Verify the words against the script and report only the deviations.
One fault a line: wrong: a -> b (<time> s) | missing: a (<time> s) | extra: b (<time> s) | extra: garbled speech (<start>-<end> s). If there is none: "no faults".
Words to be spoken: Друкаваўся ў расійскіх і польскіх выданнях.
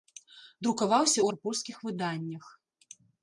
missing: расійскіх (1.3 s)